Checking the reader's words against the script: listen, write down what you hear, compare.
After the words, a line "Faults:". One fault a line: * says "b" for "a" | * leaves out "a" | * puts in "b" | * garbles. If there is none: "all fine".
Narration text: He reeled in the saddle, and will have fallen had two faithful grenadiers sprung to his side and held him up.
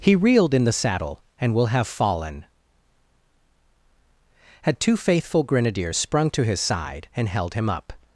He reeled in the saddle, and will have fallen had two faithful grenadiers sprung to his side and held him up.
Faults:
all fine